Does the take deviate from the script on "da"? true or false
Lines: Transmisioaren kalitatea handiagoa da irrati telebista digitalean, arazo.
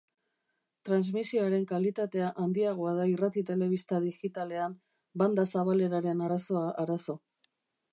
false